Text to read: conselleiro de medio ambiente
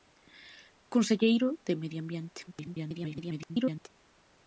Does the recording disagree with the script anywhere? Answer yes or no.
yes